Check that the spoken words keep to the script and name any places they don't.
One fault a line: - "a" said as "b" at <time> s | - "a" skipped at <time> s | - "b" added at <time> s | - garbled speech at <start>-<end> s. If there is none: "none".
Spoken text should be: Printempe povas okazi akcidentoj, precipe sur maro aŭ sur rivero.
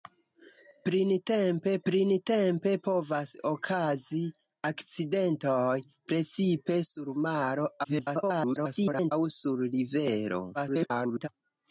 - "printempe" added at 1.9 s
- garbled speech at 7.8-9.1 s
- garbled speech at 10.5-11.3 s